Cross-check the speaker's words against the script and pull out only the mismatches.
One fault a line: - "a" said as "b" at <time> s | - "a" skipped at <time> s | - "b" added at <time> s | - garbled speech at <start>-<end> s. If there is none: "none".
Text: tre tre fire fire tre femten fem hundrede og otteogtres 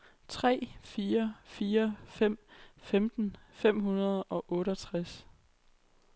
- "tre" skipped at 0.7 s
- "tre" said as "fem" at 2.1 s